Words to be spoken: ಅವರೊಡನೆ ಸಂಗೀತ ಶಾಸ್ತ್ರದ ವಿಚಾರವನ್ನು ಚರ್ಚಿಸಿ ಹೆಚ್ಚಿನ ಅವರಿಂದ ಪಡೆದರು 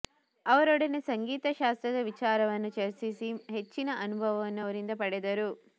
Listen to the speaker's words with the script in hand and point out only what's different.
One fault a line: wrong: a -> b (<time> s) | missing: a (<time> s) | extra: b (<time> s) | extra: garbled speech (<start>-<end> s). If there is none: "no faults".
extra: ಅನುಭವವನ್ನು (4.0 s)